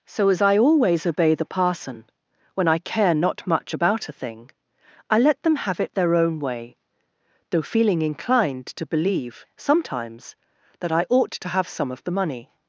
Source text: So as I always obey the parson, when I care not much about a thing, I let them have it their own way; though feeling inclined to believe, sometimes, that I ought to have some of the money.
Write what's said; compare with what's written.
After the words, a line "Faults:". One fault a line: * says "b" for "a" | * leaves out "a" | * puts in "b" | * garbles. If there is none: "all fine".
So as I always obey the parson, when I care not much about a thing, I let them have it their own way; though feeling inclined to believe, sometimes, that I ought to have some of the money.
Faults:
all fine